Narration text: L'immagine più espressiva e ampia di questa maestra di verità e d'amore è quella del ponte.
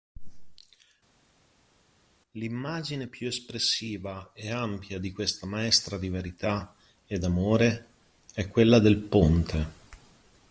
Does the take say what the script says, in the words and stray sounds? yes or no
yes